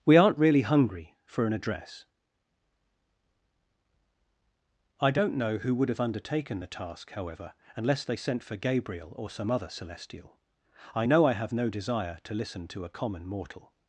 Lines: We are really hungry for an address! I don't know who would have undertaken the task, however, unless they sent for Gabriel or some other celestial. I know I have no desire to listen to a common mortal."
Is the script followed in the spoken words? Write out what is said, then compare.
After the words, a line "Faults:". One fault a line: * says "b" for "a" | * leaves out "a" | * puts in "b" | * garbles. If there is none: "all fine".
We aren't really hungry for an address! I don't know who would have undertaken the task, however, unless they sent for Gabriel or some other celestial. I know I have no desire to listen to a common mortal."
Faults:
* says "aren't" for "are"